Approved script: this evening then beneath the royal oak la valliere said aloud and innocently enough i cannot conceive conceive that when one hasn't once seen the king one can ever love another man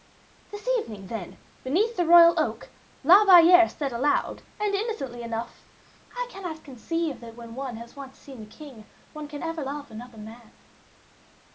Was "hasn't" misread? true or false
true